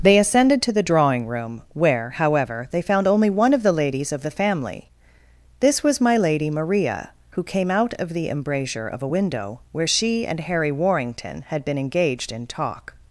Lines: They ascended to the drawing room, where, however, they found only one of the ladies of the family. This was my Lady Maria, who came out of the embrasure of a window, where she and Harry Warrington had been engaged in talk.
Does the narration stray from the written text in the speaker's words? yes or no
no